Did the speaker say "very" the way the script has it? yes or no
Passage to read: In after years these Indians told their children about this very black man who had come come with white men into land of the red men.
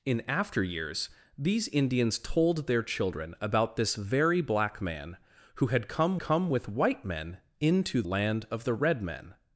yes